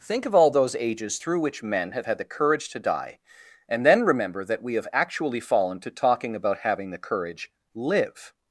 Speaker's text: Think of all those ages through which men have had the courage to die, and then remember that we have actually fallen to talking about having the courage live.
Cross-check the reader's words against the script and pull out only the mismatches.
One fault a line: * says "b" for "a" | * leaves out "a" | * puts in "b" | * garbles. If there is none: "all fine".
all fine